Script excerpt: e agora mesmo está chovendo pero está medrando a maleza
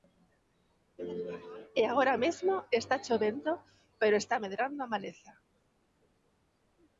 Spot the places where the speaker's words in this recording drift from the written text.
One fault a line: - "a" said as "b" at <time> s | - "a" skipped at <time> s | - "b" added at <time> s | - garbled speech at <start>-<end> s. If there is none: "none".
none